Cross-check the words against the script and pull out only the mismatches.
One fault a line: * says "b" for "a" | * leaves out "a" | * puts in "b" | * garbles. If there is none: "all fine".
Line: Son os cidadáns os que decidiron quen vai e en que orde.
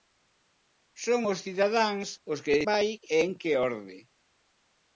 * leaves out "decidiron quen"